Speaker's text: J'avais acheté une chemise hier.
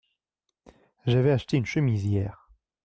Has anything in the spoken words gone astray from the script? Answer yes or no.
no